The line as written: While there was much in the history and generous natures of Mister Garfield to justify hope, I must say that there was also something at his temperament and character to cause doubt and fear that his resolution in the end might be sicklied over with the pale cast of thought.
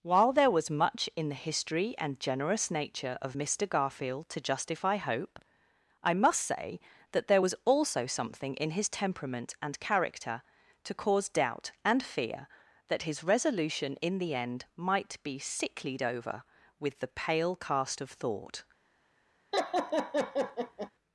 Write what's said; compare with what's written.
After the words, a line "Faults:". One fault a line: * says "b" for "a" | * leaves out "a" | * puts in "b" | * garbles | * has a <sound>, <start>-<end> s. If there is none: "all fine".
While there was much in the history and generous nature of Mister Garfield to justify hope, I must say that there was also something in his temperament and character to cause doubt and fear that his resolution in the end might be sicklied over with the pale cast of thought.
Faults:
* says "nature" for "natures"
* says "in" for "at"
* has a laugh, 19.5-20.9 s